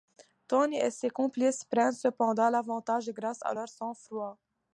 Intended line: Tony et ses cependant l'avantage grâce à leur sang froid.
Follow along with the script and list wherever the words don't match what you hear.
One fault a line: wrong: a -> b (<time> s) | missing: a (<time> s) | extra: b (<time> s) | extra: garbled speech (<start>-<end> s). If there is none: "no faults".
extra: complices prennent (1.1 s)